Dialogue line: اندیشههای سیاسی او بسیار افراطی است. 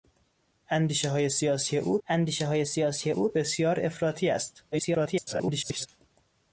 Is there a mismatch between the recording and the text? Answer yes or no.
yes